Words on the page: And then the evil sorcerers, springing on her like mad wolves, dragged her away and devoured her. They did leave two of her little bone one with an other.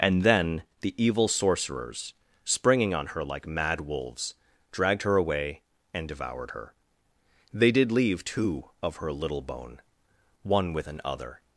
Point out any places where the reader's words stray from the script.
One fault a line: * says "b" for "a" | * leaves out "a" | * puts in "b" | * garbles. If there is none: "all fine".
all fine